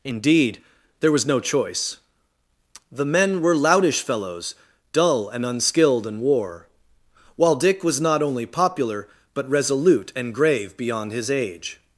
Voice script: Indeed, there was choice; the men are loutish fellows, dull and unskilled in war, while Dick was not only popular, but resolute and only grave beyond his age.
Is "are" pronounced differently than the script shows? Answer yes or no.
yes